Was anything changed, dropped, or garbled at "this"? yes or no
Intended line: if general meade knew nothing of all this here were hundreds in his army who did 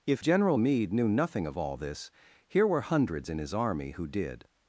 no